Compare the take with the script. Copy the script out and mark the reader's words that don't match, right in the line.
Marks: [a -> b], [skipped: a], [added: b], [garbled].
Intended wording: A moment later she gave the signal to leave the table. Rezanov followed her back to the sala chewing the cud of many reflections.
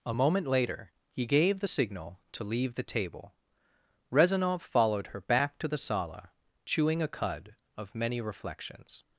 A moment later [she -> he] gave the signal to leave the table. Rezanov followed her back to the sala chewing [the -> a] cud of many reflections.